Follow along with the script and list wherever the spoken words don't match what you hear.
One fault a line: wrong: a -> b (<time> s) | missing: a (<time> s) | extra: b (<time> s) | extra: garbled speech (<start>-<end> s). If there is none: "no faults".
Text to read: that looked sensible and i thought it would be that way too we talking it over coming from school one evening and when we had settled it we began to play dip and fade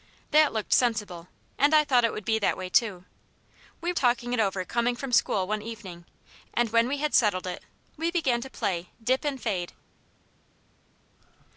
no faults